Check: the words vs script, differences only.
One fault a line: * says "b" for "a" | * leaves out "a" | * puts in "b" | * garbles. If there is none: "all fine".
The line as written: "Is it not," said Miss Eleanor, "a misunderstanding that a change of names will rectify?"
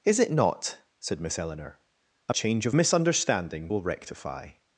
* leaves out "misunderstanding that"
* says "misunderstanding" for "names"